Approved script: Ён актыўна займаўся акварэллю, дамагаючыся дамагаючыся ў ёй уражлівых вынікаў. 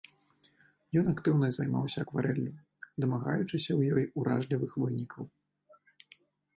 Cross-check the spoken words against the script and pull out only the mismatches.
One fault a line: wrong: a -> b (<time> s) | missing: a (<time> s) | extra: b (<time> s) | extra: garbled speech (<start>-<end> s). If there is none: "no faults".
missing: дамагаючыся (3.7 s)